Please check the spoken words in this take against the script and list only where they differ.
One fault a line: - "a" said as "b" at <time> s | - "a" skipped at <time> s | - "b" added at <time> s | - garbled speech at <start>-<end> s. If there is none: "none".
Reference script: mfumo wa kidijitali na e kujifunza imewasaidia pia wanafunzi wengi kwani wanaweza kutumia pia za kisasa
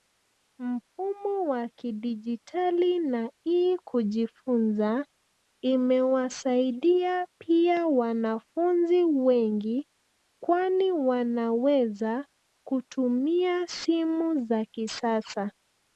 - "pia" said as "simu" at 13.7 s